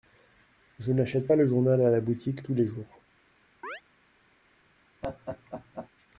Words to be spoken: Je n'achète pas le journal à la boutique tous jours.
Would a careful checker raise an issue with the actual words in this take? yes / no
yes